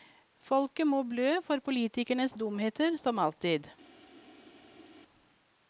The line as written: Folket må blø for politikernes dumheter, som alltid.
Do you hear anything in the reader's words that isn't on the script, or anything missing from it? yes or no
no